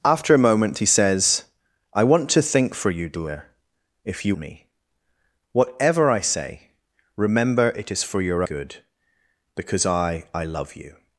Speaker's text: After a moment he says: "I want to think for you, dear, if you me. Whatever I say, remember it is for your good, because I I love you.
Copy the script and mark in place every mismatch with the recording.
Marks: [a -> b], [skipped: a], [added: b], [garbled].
After a moment he says: "I want to think for you, dear, if you me. Whatever I say, remember it is for your good, because I I love you.